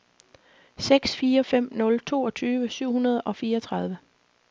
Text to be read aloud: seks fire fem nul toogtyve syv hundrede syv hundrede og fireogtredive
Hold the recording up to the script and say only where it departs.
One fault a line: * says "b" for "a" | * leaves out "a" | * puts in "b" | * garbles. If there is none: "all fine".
* leaves out "syv hundrede"